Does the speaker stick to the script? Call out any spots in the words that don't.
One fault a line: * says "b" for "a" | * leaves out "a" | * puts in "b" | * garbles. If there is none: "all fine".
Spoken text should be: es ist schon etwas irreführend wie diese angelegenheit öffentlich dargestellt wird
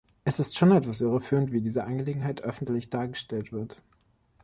all fine